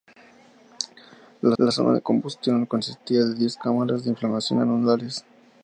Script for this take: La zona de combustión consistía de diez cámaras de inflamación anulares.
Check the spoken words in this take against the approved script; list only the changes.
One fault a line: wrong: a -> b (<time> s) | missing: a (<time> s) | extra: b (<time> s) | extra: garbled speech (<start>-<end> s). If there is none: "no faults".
extra: la (1.6 s)